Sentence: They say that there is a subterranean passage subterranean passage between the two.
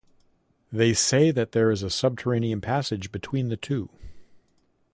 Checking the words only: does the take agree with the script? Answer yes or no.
no